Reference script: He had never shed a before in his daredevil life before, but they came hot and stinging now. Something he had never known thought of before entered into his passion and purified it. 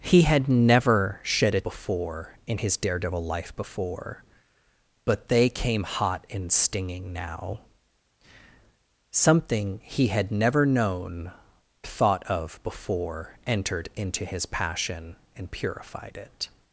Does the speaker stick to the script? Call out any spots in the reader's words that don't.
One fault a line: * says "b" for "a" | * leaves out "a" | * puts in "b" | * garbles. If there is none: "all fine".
all fine